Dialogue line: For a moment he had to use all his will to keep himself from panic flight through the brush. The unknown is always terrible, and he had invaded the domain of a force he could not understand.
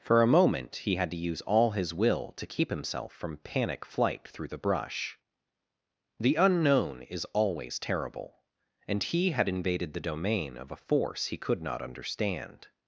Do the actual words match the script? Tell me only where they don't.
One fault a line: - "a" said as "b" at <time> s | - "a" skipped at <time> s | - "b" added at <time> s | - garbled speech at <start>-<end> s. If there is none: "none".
none